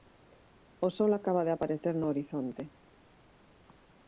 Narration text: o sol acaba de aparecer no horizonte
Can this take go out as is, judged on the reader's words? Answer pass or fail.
pass